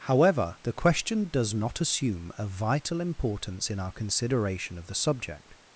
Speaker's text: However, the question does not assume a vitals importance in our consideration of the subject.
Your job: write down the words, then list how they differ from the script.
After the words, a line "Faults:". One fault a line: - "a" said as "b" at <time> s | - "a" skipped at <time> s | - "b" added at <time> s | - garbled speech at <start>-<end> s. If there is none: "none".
However, the question does not assume a vital importance in our consideration of the subject.
Faults:
- "vitals" said as "vital" at 2.4 s